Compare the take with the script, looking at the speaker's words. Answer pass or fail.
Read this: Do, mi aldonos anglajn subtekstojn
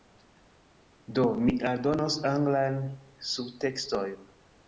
pass